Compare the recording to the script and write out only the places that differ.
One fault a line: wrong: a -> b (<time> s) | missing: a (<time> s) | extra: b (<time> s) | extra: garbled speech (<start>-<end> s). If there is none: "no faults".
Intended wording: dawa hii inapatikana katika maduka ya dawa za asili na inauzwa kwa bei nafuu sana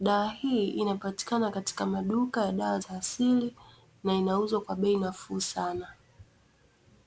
no faults